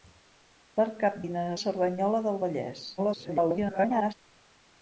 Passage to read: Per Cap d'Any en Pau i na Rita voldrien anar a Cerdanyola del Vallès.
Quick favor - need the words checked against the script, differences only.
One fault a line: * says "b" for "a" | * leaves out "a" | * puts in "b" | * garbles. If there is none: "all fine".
* leaves out "d'Any en Pau"
* leaves out "Rita voldrien anar"
* garbles